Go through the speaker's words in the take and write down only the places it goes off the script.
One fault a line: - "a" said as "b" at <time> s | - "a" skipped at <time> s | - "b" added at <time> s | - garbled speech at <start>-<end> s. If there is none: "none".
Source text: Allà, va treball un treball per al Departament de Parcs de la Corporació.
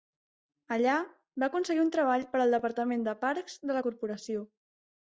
- "treball" said as "aconseguir" at 1.5 s